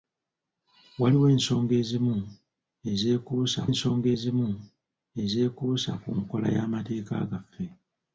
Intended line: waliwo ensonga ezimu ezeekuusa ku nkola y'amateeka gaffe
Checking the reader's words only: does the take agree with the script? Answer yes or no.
no